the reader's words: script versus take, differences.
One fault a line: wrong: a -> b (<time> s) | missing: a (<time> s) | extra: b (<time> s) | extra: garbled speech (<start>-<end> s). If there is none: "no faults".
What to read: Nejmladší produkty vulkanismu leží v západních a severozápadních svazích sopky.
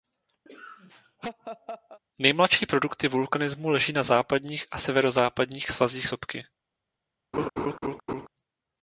wrong: v -> na (3.9 s)